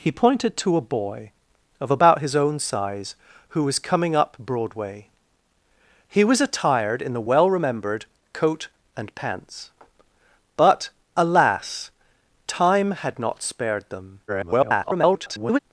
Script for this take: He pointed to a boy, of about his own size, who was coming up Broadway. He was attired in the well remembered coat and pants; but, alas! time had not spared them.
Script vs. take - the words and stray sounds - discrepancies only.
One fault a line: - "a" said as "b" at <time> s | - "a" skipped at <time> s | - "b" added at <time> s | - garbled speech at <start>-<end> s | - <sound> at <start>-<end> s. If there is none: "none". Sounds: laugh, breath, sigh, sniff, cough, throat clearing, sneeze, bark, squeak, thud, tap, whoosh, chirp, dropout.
- garbled speech at 14.3-15.6 s